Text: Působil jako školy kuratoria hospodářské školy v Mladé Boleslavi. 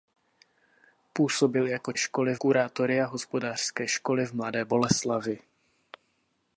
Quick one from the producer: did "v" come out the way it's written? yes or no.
yes